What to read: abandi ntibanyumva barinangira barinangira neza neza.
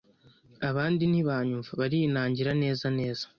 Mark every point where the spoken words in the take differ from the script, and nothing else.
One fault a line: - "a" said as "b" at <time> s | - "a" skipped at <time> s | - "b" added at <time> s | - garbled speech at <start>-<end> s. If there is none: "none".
- "barinangira" skipped at 2.5 s